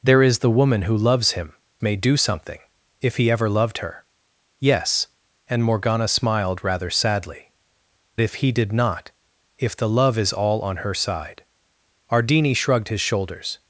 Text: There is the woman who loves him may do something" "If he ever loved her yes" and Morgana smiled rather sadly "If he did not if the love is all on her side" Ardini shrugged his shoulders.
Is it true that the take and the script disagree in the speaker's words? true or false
false